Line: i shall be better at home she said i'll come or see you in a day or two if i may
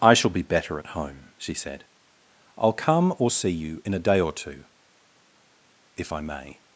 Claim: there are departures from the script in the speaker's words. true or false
false